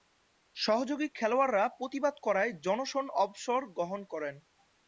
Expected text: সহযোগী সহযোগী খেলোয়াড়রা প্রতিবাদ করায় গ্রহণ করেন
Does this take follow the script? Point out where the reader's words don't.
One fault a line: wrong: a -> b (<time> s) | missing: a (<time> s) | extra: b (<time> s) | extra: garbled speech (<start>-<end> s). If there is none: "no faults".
missing: সহযোগী (1.1 s)
extra: জনসন অবসর (2.7 s)